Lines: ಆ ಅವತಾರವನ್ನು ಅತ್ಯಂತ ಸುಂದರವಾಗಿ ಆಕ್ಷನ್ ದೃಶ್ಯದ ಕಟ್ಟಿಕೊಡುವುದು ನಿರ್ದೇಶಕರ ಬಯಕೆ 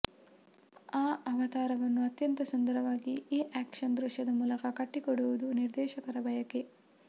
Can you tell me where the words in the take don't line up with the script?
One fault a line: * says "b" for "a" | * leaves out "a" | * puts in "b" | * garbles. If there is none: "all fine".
* puts in "ಈ"
* puts in "ಮೂಲಕ"